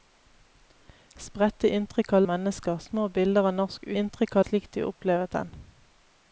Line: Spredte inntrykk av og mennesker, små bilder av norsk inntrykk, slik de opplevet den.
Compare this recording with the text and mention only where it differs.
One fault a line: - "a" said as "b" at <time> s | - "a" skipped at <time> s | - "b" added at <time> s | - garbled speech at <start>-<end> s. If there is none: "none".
none